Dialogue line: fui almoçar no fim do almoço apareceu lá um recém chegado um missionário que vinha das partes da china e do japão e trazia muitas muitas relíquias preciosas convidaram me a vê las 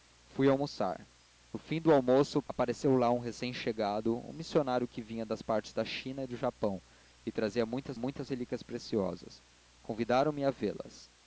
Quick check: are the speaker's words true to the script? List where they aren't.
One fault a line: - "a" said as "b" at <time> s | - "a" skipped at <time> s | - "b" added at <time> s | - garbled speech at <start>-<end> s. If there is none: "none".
none